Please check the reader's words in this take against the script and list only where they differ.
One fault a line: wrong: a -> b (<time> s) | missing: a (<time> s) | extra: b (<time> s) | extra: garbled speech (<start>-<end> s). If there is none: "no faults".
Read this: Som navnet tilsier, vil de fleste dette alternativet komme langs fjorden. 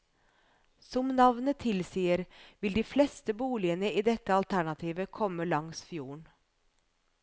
extra: boligene i (3.4 s)